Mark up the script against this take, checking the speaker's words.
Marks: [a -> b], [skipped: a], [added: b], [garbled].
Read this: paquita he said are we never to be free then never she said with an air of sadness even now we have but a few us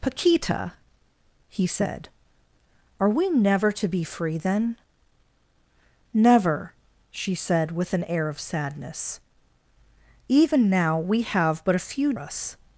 paquita he said are we never to be free then never she said with an air of sadness even now we have but a few us